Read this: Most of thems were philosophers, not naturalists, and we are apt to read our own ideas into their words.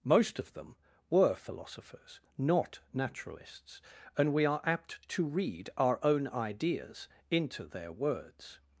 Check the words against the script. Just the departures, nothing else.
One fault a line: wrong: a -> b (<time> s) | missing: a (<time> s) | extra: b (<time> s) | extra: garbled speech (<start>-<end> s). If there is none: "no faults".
wrong: thems -> them (0.5 s)